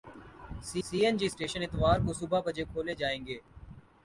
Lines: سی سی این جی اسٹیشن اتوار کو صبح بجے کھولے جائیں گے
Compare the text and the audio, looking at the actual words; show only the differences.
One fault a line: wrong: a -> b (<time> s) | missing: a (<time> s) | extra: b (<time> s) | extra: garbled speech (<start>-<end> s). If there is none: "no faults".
no faults